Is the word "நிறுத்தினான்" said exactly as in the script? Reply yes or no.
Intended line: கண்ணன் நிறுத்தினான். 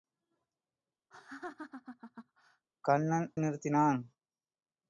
yes